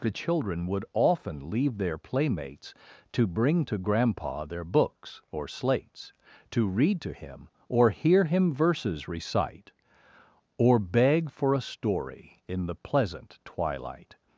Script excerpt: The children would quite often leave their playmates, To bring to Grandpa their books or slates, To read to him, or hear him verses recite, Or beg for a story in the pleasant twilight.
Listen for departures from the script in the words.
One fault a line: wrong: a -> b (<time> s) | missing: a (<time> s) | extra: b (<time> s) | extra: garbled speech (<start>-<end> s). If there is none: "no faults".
missing: quite (0.8 s)